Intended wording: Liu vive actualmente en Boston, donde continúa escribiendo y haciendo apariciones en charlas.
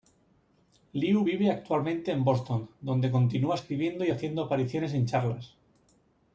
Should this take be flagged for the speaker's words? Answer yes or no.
no